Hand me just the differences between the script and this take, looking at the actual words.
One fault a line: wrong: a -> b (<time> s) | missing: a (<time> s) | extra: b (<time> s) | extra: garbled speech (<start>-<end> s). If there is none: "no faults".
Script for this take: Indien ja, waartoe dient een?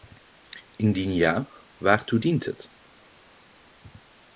wrong: een -> het (2.4 s)